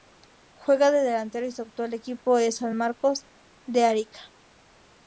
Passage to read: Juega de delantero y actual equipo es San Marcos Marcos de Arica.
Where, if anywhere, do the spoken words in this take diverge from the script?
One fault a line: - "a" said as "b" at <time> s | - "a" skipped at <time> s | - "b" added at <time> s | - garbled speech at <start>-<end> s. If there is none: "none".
- "su" added at 1.5 s
- "Marcos" skipped at 3.3 s